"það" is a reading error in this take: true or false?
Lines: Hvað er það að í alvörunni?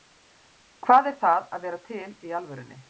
false